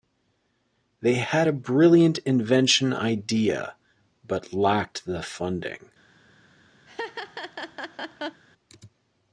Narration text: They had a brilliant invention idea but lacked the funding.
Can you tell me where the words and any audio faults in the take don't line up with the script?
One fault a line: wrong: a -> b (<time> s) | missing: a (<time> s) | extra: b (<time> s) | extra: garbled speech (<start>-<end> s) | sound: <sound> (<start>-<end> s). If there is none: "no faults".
sound: laugh (6.9-8.4 s)